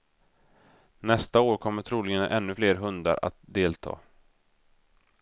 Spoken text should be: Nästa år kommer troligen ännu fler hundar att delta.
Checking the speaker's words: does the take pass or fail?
pass